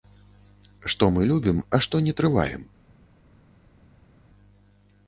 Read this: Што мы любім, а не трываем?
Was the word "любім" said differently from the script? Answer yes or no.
no